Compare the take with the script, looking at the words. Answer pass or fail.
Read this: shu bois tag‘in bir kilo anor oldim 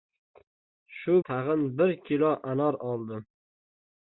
fail